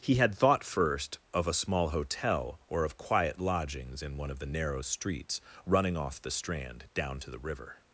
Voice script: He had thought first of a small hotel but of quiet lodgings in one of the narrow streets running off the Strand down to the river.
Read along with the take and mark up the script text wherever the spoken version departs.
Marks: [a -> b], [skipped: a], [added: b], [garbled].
He had thought first of a small hotel [but -> or] of quiet lodgings in one of the narrow streets running off the Strand down to the river.